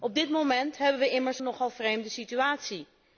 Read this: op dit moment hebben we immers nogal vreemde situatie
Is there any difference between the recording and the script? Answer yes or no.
no